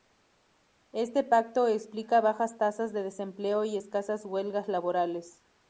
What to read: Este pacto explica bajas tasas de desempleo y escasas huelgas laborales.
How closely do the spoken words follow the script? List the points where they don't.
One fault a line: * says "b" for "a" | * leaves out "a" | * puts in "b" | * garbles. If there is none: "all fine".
all fine